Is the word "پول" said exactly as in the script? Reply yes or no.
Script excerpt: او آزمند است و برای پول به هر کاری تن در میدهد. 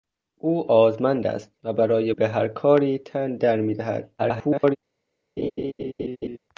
no